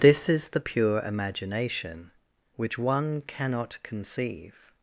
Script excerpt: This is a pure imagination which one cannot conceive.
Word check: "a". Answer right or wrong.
wrong